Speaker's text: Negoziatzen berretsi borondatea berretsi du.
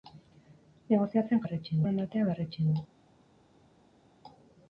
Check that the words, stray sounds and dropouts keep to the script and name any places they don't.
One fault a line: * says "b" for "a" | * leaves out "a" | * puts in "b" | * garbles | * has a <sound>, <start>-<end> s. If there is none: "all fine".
all fine